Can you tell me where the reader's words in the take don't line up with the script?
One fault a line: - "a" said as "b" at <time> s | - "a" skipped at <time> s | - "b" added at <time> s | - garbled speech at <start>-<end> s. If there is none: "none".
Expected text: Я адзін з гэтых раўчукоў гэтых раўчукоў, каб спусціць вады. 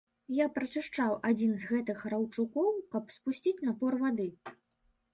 - "прачышчаў" added at 0.6 s
- "гэтых раўчукоў" skipped at 2.8 s
- "напор" added at 3.7 s